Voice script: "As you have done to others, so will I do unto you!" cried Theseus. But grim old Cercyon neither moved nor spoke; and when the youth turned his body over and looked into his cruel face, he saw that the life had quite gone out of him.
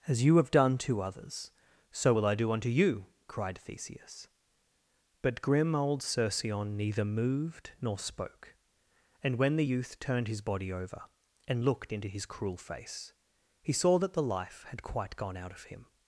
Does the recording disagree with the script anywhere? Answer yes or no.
no